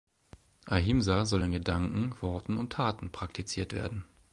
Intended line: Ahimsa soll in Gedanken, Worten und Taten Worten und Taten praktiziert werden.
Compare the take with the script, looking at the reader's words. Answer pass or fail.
fail